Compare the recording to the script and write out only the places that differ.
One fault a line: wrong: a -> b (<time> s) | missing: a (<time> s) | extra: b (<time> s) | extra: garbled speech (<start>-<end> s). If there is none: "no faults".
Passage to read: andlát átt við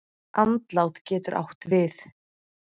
extra: getur (1.1 s)